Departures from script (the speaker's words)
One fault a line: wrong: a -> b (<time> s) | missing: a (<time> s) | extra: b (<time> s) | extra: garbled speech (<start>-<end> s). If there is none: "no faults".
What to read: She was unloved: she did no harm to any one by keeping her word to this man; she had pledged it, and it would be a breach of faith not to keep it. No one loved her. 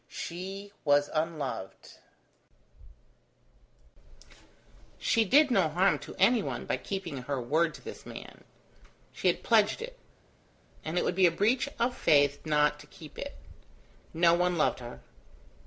no faults